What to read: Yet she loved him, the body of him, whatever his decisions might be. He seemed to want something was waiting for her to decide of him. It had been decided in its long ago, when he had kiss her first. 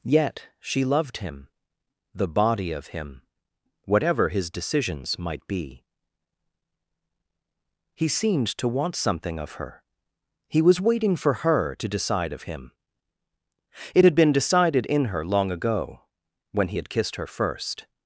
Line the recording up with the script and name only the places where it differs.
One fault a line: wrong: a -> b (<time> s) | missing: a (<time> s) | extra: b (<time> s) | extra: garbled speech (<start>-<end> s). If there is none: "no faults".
extra: of her He (9.4 s)
wrong: its -> her (15.1 s)
wrong: kiss -> kissed (16.9 s)